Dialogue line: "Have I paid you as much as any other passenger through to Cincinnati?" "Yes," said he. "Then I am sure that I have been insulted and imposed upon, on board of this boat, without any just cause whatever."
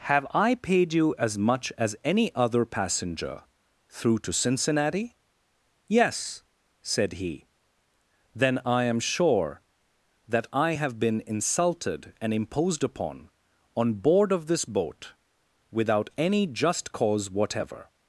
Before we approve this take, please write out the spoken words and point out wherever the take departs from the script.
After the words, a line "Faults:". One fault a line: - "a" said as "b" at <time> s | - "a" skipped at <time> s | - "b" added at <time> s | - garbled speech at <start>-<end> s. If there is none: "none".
"Have I paid you as much as any other passenger through to Cincinnati?" "Yes," said he. "Then I am sure that I have been insulted and imposed upon, on board of this boat, without any just cause whatever."
Faults:
none